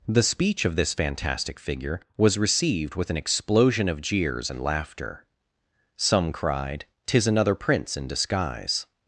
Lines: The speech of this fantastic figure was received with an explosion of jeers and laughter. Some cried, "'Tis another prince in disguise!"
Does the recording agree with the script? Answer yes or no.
yes